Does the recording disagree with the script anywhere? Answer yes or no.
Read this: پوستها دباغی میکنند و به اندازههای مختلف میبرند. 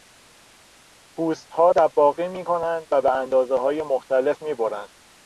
no